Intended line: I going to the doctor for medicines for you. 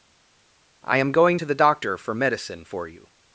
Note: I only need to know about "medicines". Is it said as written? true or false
false